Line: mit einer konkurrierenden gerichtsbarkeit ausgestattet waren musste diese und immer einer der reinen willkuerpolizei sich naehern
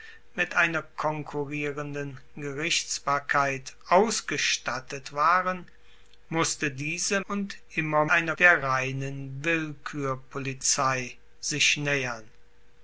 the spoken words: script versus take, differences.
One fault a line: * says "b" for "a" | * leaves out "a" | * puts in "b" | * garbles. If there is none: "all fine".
all fine